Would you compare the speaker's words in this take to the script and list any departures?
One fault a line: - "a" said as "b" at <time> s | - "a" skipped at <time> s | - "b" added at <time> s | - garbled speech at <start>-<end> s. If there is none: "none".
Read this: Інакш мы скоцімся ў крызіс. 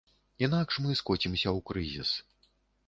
none